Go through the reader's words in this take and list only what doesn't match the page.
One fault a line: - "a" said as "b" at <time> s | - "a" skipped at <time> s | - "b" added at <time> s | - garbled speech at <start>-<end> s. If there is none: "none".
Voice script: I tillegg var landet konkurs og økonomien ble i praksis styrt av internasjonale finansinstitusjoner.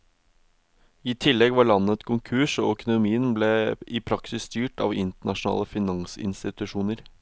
none